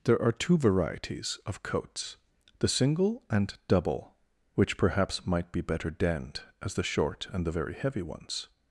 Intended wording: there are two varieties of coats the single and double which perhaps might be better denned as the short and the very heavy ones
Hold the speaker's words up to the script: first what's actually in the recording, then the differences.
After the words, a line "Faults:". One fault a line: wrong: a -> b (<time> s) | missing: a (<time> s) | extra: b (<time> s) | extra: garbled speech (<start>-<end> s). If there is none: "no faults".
there are two varieties of coats the single and double which perhaps might be better denned as the short and the very heavy ones
Faults:
no faults